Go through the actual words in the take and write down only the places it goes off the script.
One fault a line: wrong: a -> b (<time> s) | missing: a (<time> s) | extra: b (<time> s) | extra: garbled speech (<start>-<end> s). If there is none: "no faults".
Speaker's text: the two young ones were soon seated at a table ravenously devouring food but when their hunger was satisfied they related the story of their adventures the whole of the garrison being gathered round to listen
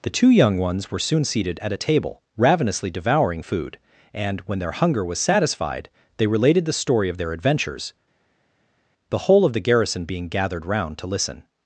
wrong: but -> and (4.1 s)